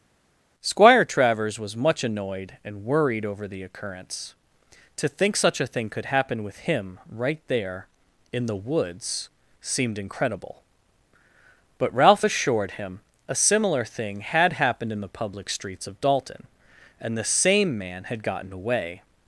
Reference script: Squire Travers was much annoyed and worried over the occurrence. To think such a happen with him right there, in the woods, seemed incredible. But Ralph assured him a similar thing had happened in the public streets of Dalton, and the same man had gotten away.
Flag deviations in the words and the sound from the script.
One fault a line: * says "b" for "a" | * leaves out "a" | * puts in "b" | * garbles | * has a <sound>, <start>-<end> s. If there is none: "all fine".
* puts in "thing could"